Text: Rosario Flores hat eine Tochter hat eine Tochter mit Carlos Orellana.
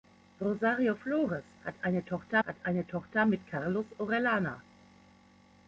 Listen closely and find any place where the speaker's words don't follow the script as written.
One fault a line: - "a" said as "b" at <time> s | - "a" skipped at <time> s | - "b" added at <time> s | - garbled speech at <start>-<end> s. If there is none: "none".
none